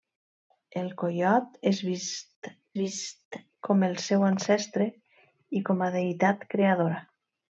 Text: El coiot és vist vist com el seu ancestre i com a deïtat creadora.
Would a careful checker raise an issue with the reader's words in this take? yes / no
no